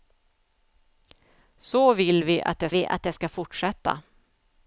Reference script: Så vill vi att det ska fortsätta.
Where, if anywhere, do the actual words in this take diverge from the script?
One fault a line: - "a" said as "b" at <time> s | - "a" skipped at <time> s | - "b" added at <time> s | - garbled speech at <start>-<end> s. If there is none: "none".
- "vi att det" added at 2.7 s